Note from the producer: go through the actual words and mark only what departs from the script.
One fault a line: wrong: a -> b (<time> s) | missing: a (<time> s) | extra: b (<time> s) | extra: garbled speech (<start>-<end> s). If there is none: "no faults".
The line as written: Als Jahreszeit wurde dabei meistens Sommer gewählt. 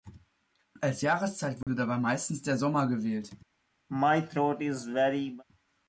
extra: der (2.4 s)